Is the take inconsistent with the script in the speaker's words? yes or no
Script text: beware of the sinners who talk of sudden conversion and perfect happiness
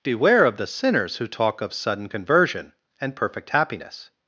no